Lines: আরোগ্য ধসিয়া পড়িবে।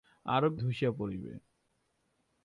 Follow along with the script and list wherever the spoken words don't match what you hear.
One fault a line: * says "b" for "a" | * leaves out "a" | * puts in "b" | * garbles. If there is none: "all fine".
all fine